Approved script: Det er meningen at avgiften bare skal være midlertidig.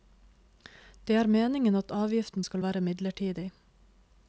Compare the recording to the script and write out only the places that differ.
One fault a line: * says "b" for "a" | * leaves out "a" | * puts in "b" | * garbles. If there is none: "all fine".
* leaves out "bare"